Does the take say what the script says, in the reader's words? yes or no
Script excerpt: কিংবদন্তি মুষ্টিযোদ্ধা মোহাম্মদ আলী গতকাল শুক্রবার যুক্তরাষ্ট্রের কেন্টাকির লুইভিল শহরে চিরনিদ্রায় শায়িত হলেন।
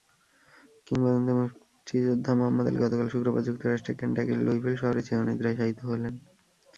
yes